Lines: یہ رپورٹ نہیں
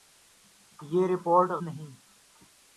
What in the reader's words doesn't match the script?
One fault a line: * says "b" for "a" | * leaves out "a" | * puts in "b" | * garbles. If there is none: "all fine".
all fine